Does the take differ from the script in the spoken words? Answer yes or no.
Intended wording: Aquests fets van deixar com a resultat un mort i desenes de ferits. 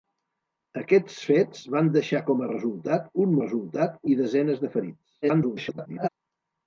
yes